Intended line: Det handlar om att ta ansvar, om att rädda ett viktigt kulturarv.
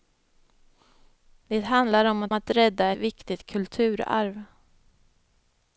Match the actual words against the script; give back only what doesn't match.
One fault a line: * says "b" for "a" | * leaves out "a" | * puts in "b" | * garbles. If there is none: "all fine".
* leaves out "ta ansvar om"
* leaves out "ett"